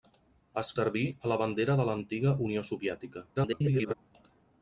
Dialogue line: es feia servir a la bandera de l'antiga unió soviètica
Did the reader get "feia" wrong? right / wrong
wrong